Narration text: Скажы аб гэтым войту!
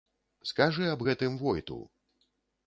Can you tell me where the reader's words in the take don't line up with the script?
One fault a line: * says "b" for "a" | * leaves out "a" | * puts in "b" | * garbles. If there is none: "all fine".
all fine